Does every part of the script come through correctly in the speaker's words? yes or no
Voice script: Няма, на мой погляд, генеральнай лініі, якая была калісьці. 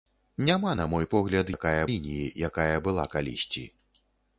no